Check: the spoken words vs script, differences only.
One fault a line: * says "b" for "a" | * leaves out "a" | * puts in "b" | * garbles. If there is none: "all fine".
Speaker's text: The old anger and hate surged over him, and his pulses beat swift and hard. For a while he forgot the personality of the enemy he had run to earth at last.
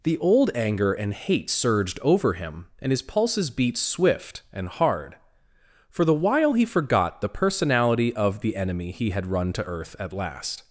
* says "the" for "a"